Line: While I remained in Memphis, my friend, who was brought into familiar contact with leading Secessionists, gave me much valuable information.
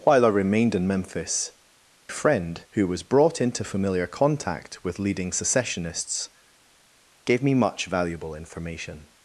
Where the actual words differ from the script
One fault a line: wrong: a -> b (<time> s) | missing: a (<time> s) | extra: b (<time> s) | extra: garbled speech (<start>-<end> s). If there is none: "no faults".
missing: my (1.5 s)